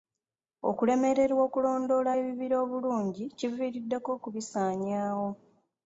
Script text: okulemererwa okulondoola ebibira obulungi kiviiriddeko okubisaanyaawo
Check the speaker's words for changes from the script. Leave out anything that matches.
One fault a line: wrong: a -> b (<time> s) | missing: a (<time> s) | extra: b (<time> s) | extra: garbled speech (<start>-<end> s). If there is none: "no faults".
no faults